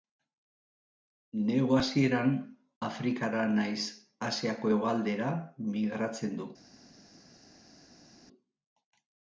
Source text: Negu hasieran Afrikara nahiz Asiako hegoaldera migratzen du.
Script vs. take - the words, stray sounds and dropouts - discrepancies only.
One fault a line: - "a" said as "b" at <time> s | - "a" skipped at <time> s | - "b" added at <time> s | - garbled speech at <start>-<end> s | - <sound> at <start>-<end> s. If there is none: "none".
none